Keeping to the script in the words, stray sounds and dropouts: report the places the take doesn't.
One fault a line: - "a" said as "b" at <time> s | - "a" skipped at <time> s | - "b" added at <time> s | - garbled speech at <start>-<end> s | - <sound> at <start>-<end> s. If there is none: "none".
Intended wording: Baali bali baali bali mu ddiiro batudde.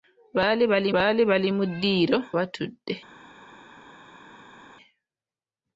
none